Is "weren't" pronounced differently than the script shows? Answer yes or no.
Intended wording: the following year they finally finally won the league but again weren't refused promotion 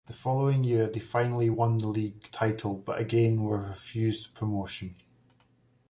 yes